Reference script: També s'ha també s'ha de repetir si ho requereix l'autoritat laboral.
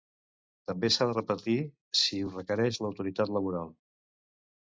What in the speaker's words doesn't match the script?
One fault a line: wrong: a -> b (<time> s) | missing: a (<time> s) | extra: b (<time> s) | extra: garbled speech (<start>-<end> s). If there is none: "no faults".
missing: també s'ha (1.1 s)